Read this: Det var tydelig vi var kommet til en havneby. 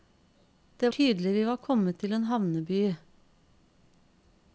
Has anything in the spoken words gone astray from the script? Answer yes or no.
yes